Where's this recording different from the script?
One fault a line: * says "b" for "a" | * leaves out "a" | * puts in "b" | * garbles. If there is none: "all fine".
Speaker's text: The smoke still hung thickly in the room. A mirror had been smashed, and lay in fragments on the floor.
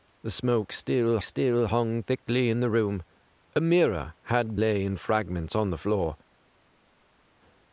* puts in "still"
* leaves out "been smashed and"